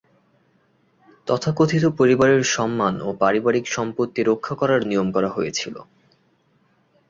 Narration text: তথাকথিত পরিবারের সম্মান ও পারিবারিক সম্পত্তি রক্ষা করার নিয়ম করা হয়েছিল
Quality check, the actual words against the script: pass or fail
pass